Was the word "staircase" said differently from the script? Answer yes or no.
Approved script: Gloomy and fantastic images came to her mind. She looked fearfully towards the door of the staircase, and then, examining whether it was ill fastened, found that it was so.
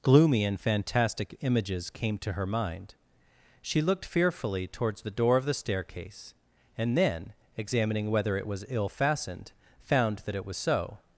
no